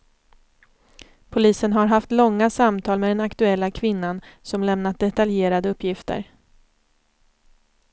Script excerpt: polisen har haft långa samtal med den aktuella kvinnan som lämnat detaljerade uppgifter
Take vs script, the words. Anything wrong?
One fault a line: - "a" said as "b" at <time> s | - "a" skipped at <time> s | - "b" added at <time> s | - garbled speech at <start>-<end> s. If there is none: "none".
none